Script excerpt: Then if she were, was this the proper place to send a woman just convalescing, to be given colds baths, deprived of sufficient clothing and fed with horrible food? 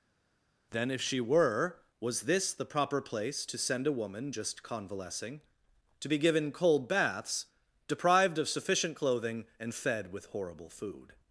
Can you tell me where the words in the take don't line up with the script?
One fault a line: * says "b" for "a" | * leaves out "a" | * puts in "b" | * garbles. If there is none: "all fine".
* says "cold" for "colds"